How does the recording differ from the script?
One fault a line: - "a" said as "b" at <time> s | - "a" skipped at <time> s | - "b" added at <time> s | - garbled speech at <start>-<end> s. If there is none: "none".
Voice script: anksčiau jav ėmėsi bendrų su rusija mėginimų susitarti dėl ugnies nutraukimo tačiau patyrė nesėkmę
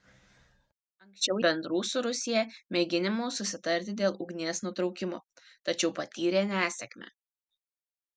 - "jav ėmėsi" skipped at 1.4 s